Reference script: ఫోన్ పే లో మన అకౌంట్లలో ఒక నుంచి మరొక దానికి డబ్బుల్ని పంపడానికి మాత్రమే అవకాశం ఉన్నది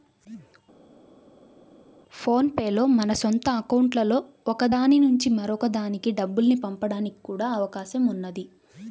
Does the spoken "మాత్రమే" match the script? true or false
false